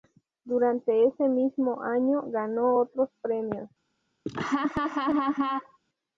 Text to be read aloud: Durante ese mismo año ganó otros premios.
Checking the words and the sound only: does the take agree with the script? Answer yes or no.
no